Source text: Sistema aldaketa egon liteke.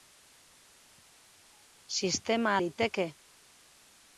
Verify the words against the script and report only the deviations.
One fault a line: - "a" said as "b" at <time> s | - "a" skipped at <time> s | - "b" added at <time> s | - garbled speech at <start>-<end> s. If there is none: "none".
- "aldaketa egon" skipped at 2.6 s